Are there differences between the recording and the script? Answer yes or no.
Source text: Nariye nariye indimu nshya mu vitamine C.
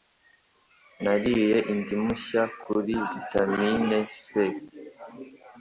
yes